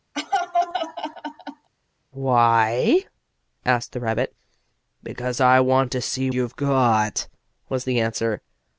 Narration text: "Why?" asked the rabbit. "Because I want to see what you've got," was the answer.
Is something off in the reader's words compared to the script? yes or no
yes